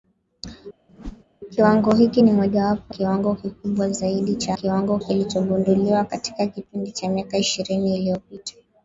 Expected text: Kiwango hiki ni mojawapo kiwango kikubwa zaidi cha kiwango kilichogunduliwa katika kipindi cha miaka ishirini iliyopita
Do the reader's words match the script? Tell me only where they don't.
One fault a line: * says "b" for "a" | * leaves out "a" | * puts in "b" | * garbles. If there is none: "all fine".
all fine